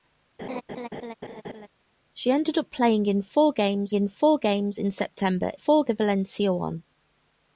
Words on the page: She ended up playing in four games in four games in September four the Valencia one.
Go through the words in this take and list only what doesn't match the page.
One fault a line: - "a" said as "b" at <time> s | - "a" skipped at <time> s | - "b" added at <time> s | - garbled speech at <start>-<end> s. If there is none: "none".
none